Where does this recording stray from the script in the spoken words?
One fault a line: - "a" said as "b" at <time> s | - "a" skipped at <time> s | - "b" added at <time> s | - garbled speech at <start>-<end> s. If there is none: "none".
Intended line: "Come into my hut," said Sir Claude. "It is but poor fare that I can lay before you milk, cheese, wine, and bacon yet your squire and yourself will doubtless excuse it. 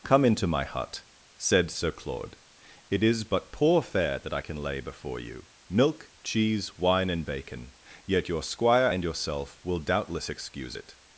none